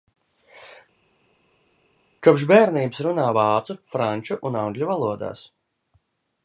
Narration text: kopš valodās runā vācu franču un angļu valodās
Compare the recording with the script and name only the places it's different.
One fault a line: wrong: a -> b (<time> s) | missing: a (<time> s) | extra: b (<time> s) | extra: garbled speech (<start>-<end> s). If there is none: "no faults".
wrong: valodās -> bērnības (2.5 s)